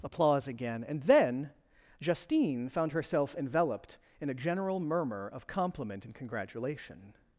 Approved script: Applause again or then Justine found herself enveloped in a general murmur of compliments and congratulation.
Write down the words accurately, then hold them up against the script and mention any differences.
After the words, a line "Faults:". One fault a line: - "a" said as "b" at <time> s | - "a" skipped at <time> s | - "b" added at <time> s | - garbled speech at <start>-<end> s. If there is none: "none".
Applause again and then Justine found herself enveloped in a general murmur of compliment and congratulation.
Faults:
- "or" said as "and" at 0.9 s
- "compliments" said as "compliment" at 5.5 s